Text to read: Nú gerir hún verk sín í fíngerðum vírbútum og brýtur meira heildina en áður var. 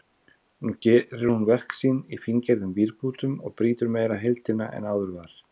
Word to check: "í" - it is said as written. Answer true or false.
true